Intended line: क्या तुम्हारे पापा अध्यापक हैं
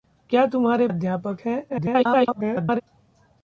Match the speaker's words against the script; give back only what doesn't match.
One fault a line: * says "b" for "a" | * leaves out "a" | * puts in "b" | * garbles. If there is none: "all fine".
* leaves out "पापा"
* garbles